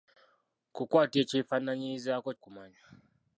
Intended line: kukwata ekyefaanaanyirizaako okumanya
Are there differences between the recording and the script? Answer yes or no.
no